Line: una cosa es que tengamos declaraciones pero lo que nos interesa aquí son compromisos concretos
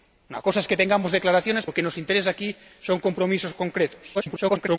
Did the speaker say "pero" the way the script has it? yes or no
no